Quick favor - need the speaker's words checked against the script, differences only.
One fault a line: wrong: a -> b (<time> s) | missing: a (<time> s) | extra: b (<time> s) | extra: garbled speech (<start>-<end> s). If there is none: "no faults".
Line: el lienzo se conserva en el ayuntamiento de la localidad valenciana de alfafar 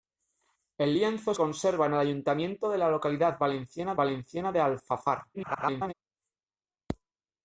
missing: se (1.3 s)
extra: valenciana (3.9 s)
extra: garbled speech (5.3-5.9 s)